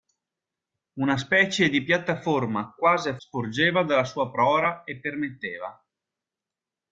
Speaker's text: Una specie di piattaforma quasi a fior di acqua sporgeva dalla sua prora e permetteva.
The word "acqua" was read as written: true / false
false